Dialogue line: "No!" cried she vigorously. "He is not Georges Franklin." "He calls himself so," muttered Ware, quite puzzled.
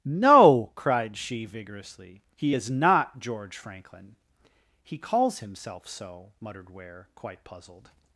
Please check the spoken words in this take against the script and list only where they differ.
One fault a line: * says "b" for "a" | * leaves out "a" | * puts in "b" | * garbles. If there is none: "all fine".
* says "George" for "Georges"